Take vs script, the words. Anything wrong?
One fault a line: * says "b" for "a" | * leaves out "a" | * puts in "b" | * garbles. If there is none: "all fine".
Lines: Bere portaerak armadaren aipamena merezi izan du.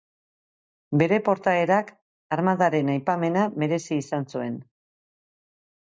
* says "zuen" for "du"